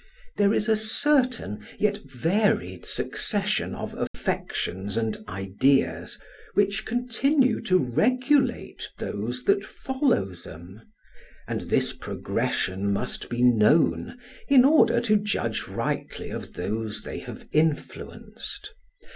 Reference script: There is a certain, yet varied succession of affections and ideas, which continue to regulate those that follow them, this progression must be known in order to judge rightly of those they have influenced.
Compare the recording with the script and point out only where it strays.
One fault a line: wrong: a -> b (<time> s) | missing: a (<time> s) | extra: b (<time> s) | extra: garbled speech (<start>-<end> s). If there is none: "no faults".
extra: and (11.5 s)